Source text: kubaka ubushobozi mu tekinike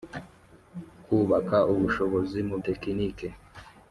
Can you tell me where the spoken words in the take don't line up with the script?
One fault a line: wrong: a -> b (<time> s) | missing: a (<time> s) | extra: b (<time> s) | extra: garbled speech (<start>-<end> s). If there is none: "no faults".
no faults